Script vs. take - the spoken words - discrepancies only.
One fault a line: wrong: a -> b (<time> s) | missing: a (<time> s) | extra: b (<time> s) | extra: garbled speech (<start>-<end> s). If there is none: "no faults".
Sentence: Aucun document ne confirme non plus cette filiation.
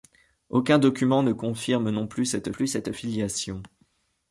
extra: plus cette (2.5 s)